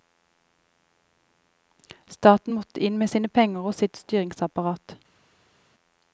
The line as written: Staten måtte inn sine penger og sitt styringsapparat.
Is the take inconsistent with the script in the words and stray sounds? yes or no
yes